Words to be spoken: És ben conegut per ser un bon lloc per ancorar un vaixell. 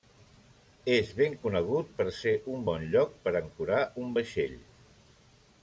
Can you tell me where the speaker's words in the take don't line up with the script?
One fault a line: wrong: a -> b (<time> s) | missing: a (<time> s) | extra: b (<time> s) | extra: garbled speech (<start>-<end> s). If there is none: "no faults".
no faults